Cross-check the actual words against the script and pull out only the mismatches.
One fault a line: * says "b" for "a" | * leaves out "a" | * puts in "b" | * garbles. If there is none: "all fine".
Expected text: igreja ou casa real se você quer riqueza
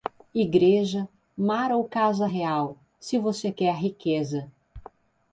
* puts in "mar"